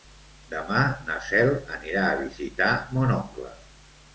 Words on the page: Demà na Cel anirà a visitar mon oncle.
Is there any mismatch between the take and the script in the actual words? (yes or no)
no